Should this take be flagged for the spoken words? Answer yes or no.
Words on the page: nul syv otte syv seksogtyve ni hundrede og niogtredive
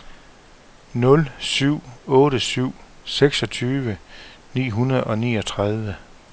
no